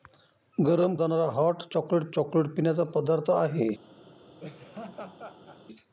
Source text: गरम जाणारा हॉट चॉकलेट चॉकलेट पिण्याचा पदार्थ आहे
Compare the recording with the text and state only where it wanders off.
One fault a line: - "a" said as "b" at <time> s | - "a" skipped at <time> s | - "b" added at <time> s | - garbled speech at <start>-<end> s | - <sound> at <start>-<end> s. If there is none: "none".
- laugh at 4.4-5.6 s